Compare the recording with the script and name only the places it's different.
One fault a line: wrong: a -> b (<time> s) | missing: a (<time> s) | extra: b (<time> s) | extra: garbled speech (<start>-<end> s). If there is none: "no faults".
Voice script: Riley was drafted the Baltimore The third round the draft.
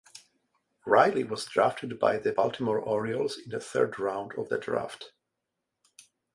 extra: by (2.0 s)
extra: Orioles in (2.8 s)
extra: of (4.4 s)